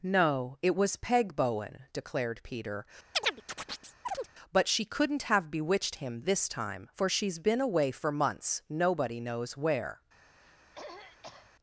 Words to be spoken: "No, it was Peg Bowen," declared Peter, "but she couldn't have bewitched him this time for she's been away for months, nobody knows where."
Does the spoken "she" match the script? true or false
true